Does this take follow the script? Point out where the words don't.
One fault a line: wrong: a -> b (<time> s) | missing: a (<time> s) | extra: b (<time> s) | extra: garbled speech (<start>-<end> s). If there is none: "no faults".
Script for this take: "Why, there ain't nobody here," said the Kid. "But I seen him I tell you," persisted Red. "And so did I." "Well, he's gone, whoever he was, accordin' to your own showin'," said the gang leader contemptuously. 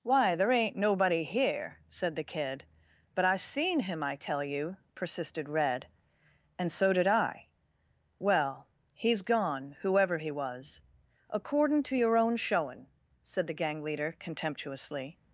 no faults